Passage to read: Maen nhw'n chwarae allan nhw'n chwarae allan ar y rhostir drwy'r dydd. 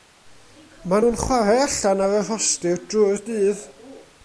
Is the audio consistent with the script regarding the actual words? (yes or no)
no